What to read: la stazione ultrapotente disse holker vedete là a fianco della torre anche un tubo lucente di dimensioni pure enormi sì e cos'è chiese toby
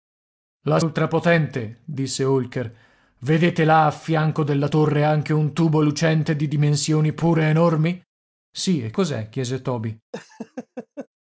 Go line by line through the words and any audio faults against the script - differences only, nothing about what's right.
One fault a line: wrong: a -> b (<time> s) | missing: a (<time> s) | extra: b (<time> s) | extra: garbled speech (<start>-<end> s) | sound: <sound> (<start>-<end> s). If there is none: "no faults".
missing: stazione (0.8 s)
sound: laugh (10.1-11.1 s)